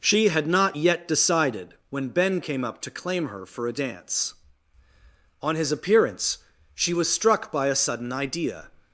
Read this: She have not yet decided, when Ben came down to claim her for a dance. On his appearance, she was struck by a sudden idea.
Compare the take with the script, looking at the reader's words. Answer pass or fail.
fail